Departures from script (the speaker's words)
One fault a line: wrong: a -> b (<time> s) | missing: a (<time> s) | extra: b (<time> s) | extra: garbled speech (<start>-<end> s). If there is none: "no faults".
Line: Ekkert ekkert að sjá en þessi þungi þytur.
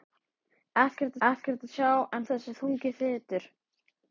no faults